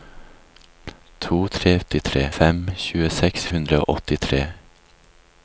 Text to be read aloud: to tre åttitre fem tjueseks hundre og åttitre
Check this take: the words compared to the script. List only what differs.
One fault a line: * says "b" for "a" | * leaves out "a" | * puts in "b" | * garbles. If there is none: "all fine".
all fine